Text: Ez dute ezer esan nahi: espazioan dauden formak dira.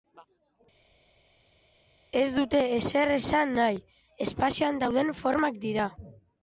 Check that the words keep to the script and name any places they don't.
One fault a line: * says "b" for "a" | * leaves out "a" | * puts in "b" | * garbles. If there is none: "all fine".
all fine